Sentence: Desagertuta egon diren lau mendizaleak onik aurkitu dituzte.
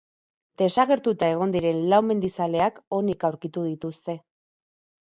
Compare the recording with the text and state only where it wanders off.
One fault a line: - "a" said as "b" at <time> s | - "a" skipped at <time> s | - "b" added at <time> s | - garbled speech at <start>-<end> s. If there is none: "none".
none